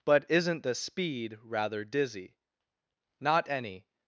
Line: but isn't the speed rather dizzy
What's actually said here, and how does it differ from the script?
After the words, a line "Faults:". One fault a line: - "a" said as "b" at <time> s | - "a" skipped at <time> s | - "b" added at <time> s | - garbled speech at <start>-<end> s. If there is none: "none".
but isn't the speed rather dizzy not any
Faults:
- "not any" added at 3.2 s